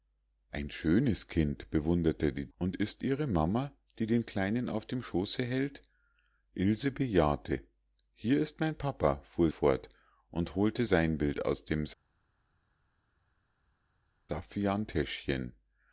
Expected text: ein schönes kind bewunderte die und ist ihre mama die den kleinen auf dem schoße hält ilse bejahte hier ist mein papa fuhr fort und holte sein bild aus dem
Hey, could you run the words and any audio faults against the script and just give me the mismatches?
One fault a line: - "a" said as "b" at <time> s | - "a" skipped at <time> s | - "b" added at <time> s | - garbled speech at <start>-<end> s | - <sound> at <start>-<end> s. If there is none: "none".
none